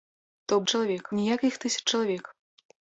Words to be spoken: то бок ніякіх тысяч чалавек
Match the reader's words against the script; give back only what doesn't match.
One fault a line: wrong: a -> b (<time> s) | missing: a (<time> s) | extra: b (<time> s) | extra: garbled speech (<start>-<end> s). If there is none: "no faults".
wrong: бок -> чалавек (0.7 s)